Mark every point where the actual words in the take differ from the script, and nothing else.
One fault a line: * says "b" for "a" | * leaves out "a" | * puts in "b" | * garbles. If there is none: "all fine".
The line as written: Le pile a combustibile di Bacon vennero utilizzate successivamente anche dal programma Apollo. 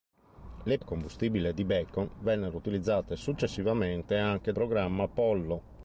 * leaves out "pile"
* leaves out "dal"